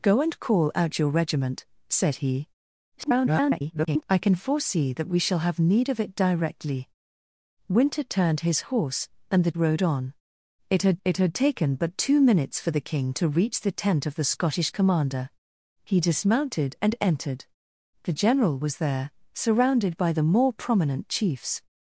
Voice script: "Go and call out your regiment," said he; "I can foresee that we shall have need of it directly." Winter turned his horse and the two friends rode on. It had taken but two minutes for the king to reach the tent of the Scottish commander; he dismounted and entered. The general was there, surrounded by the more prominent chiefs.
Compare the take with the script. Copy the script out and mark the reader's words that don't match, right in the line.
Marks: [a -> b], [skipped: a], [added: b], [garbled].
"Go and call out your regiment," said he; [garbled] "I can foresee that we shall have need of it directly." Winter turned his horse and the [two friends rode on. -> rode on It had] It had taken but two minutes for the king to reach the tent of the Scottish commander; he dismounted and entered. The general was there, surrounded by the more prominent chiefs.